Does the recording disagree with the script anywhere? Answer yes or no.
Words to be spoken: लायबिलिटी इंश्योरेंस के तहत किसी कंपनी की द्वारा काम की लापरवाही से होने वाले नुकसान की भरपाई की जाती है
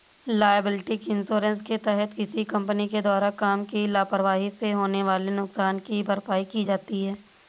yes